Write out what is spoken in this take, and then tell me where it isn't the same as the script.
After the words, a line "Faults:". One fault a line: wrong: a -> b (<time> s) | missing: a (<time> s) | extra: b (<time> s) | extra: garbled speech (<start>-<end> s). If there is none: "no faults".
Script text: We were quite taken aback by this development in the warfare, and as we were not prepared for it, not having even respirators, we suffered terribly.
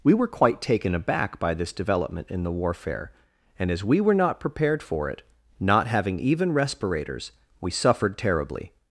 We were quite taken aback by this development in the warfare, and as we were not prepared for it, not having even respirators, we suffered terribly.
Faults:
no faults